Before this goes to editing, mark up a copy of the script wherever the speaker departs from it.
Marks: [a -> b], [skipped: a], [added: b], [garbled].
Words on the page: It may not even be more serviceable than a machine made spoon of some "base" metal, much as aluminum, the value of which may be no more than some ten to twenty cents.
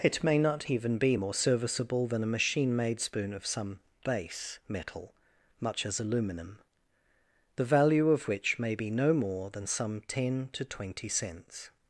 It may not even be more serviceable than a machine made spoon of some "base" metal, much as aluminum, the value of which may be no more than some ten to twenty cents.